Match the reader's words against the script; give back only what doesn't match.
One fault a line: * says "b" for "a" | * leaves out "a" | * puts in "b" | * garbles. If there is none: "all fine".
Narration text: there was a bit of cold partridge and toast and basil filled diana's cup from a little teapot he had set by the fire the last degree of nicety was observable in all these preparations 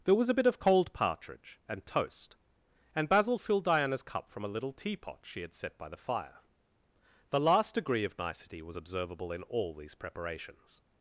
* says "she" for "he"